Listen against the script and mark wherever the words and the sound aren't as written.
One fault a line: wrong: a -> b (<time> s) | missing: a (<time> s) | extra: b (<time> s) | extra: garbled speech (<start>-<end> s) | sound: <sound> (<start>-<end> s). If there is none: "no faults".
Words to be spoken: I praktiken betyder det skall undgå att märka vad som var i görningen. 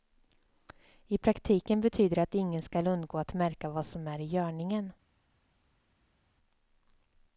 extra: att ingen (2.2 s)
wrong: var -> är (4.1 s)